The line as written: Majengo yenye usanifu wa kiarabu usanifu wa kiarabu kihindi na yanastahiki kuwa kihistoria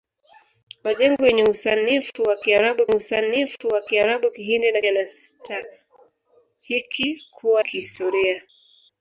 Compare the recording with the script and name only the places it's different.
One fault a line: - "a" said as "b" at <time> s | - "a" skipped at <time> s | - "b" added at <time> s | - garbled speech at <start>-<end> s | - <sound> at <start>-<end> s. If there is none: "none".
none